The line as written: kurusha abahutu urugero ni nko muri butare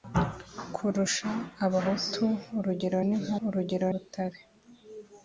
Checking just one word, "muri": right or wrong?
wrong